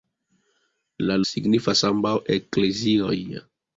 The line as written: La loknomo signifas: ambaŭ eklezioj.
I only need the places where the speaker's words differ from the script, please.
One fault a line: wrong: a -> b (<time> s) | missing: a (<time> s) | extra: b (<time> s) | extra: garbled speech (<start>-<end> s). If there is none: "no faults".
missing: loknomo (1.2 s)